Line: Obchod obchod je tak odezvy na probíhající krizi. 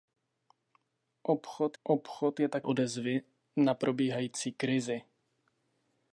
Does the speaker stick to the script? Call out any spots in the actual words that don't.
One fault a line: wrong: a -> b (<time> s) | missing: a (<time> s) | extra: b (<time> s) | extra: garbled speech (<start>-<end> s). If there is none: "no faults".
no faults